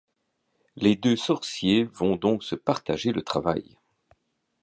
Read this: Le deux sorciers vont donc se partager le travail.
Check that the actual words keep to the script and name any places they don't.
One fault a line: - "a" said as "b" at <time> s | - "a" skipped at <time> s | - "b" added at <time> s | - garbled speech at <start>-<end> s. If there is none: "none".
- "Le" said as "Les" at 0.8 s